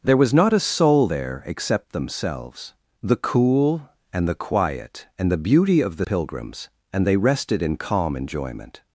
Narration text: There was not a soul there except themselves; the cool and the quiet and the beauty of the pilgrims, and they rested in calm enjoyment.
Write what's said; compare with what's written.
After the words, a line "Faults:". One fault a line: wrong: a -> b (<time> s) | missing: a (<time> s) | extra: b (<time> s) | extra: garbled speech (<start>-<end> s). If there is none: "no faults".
There was not a soul there except themselves; the cool and the quiet and the beauty of the pilgrims, and they rested in calm enjoyment.
Faults:
no faults